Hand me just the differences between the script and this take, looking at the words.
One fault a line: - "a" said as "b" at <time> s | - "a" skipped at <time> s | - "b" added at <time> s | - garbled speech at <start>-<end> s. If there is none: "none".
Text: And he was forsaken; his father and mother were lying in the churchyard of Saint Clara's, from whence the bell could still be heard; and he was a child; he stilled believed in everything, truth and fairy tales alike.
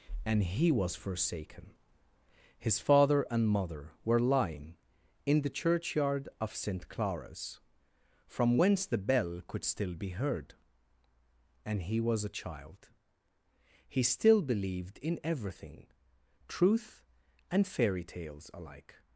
- "stilled" said as "still" at 14.0 s